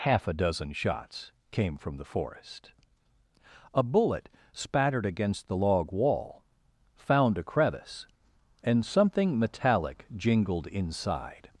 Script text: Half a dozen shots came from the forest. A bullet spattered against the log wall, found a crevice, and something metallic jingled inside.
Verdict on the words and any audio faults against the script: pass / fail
pass